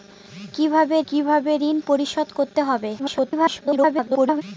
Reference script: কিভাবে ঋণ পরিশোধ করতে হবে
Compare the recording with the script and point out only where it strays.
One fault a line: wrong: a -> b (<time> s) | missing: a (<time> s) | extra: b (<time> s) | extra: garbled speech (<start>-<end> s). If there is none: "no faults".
extra: কিভাবে (1.1 s)
extra: garbled speech (3.0-4.4 s)